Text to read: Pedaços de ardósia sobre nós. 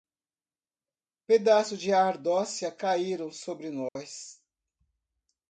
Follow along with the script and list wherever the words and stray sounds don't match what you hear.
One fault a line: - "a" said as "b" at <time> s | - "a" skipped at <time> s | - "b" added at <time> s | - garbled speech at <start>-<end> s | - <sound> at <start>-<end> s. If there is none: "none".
- "caíram" added at 2.7 s
- dropout at 3.9-4.0 s